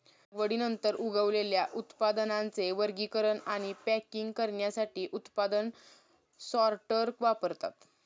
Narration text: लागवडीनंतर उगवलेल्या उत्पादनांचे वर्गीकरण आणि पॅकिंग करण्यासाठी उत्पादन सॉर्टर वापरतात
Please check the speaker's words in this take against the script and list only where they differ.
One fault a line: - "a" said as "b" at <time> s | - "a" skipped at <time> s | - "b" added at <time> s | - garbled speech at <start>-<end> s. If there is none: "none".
none